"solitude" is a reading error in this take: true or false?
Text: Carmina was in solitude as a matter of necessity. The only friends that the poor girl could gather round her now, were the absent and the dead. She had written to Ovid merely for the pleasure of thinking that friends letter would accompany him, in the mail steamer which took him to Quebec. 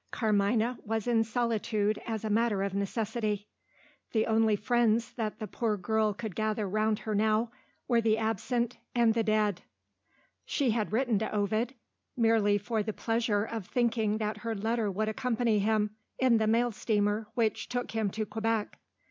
false